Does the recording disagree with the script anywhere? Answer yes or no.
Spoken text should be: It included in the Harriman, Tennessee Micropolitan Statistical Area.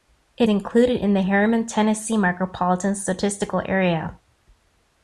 no